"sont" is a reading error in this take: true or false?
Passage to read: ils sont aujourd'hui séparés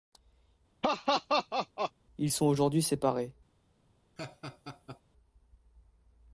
false